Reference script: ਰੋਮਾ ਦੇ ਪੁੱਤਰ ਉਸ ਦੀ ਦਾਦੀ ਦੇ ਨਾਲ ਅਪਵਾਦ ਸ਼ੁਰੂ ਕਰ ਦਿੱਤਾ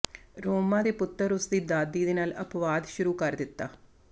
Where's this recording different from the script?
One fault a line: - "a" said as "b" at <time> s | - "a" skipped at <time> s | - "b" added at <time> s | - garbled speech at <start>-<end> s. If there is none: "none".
none